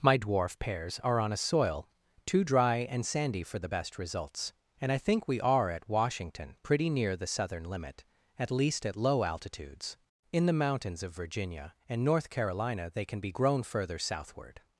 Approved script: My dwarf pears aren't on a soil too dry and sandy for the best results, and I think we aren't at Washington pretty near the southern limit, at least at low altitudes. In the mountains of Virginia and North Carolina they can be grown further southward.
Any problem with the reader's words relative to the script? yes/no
yes